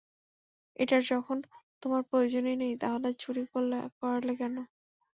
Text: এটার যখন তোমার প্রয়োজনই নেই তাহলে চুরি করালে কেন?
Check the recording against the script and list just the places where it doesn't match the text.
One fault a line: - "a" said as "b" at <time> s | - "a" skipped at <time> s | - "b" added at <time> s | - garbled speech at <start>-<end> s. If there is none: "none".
none